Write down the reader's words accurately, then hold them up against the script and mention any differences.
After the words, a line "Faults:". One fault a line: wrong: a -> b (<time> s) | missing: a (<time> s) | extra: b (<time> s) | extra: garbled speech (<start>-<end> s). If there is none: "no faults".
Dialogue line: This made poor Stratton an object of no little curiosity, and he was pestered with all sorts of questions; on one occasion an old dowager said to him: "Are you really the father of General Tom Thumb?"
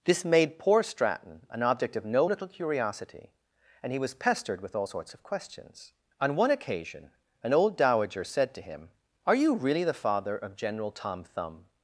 This made poor Stratton an object of no little curiosity, and he was pestered with all sorts of questions; on one occasion an old dowager said to him: "Are you really the father of General Tom Thumb?"
Faults:
no faults